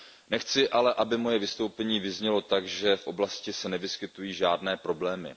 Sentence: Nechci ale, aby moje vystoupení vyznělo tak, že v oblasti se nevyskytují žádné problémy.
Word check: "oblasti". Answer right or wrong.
right